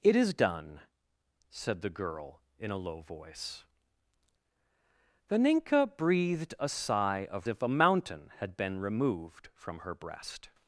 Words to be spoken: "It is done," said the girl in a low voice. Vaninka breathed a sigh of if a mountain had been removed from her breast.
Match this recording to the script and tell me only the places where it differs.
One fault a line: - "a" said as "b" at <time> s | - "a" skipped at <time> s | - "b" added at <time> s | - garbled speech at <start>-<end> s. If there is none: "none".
none